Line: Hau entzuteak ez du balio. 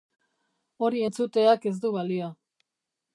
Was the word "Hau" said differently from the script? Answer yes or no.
yes